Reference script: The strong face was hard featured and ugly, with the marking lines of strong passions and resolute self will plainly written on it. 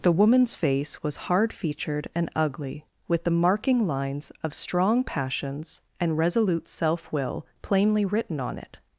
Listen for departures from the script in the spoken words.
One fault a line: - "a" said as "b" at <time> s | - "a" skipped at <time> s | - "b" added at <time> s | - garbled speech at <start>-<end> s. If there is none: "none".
- "strong" said as "woman's" at 0.1 s